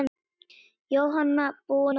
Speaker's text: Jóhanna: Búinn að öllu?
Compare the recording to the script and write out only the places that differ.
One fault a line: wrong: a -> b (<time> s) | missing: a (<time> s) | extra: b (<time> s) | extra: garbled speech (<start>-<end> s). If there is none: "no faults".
no faults